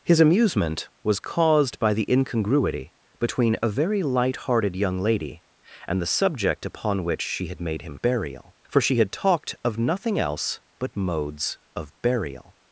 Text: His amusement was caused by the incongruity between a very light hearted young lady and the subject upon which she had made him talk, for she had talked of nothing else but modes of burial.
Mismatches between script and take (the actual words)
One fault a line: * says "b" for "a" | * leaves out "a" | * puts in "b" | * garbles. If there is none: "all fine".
* says "burial" for "talk"